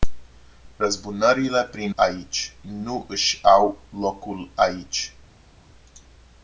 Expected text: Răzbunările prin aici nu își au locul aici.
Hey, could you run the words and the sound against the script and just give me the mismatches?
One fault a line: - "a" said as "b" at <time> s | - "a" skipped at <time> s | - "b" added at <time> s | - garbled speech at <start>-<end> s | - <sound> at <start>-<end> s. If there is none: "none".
none